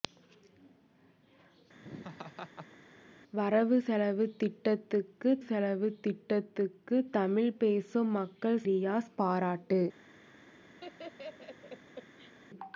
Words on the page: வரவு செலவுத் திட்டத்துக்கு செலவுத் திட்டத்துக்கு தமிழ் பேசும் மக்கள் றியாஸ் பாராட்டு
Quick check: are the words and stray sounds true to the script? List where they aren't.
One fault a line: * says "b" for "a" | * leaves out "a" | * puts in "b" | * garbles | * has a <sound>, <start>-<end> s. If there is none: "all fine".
* has a laugh, 1.8-2.8 s
* has a laugh, 10.8-12.3 s